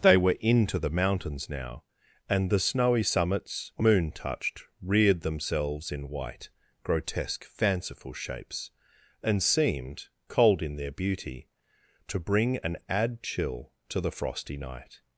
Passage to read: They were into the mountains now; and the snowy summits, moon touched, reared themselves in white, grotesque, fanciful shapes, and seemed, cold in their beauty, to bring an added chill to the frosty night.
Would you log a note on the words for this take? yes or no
yes